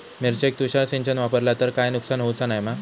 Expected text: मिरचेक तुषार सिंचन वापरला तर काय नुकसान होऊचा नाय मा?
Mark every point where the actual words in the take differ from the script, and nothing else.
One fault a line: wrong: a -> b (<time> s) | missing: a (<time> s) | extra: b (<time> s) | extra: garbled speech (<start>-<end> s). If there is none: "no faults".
no faults